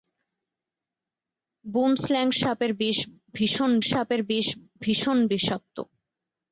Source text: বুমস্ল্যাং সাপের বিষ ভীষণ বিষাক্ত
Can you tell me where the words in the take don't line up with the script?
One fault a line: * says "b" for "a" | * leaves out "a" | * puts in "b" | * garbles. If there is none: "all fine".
* puts in "সাপের বিষ ভীষণ"